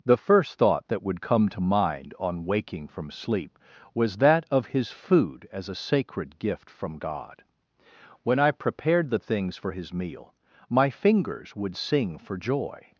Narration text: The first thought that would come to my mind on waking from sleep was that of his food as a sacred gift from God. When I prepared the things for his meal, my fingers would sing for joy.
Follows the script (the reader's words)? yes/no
no